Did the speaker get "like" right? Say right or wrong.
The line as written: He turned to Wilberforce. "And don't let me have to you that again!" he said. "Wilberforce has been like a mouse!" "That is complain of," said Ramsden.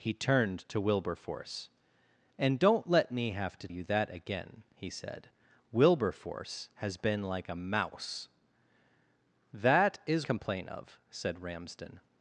right